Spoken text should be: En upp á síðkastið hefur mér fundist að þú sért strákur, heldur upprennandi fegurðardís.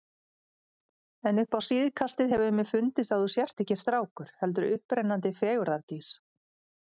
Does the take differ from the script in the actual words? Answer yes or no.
yes